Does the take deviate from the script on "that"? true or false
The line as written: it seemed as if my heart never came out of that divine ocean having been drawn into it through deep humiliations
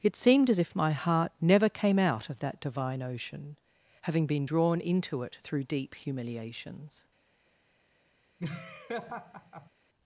false